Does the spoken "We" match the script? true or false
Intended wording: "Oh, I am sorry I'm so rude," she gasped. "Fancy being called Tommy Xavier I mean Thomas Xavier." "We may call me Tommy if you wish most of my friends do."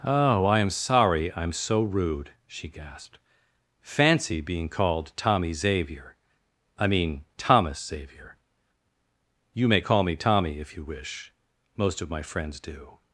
false